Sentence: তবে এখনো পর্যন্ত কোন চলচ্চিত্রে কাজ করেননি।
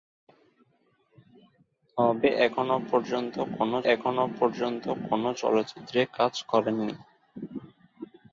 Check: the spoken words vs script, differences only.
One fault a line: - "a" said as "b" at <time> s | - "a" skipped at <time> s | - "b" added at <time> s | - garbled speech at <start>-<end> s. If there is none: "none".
- "এখনো পর্যন্ত কোন" added at 3.9 s